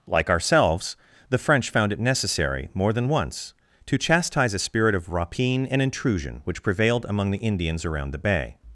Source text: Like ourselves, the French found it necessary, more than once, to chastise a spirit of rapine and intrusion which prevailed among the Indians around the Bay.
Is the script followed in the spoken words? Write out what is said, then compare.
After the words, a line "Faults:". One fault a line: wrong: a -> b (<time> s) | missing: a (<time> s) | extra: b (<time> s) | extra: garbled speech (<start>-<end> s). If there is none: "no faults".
Like ourselves, the French found it necessary, more than once, to chastise a spirit of rapine and intrusion which prevailed among the Indians around the Bay.
Faults:
no faults